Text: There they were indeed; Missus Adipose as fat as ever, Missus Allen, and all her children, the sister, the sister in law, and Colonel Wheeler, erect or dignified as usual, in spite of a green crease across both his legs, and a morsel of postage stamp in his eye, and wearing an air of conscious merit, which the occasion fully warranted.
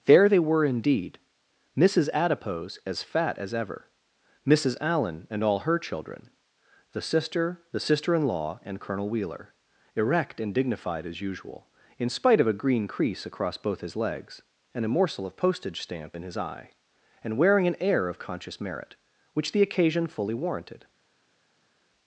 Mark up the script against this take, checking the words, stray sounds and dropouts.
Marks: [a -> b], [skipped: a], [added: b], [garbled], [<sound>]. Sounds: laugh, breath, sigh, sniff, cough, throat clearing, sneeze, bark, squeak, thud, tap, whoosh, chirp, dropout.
There they were indeed; Missus Adipose as fat as ever, Missus Allen, and all her children, the sister, the sister in law, and Colonel Wheeler, erect [or -> and] dignified as usual, in spite of a green crease across both his legs, and a morsel of postage stamp in his eye, and wearing an air of conscious merit, which the occasion fully warranted.